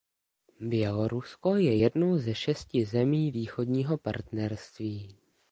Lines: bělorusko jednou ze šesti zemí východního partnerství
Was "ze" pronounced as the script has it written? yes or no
yes